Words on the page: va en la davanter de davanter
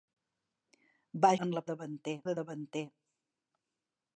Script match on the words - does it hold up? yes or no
yes